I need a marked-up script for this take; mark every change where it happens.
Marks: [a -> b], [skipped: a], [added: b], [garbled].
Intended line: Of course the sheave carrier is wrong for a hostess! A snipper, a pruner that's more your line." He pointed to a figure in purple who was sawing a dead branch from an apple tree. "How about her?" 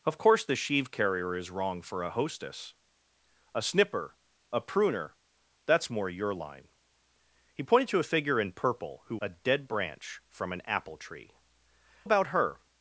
Of course the sheave carrier is wrong for a hostess! A snipper, a pruner that's more your line." He pointed to a figure in purple who [skipped: was sawing] a dead branch from an apple tree. [skipped: "How] about her?"